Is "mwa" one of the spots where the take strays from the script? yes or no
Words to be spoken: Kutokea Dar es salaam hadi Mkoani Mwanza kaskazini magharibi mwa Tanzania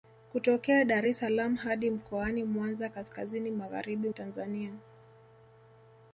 yes